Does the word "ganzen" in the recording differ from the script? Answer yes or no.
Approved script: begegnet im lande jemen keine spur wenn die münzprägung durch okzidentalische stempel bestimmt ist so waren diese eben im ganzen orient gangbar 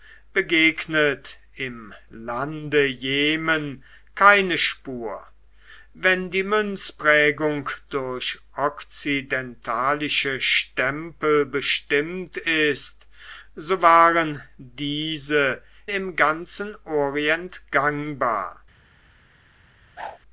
no